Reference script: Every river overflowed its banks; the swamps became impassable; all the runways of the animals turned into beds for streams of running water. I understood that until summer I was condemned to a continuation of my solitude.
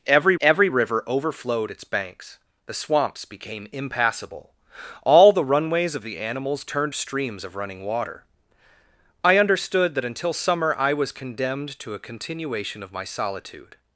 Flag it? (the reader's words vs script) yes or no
yes